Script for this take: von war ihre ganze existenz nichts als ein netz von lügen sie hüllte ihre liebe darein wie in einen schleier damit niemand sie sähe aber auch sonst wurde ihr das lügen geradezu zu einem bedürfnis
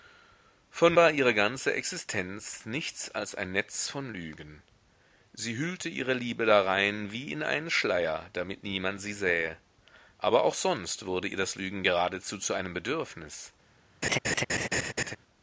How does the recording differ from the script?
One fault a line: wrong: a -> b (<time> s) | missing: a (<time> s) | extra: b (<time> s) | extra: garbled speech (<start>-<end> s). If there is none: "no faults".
no faults